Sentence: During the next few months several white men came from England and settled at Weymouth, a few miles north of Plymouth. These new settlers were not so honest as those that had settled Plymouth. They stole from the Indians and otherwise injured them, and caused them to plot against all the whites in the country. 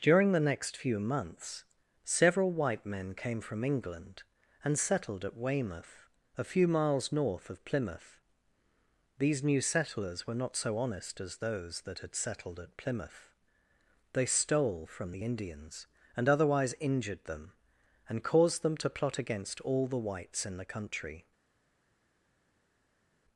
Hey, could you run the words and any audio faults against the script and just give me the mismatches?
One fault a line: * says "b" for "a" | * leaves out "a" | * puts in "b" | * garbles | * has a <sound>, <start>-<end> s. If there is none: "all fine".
* puts in "at"